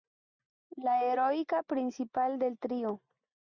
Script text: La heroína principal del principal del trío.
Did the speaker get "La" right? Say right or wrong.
right